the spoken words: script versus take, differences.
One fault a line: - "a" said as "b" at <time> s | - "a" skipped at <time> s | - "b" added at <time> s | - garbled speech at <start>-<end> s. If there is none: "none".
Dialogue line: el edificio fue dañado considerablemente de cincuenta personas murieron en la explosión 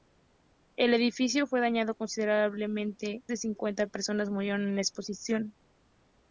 none